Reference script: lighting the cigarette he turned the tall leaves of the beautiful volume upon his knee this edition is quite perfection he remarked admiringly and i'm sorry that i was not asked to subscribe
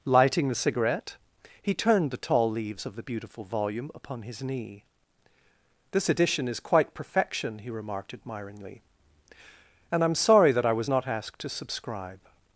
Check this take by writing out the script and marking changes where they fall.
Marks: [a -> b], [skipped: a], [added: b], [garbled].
lighting the cigarette he turned the tall leaves of the beautiful volume upon his knee this edition is quite perfection he remarked admiringly and i'm sorry that i was not asked to subscribe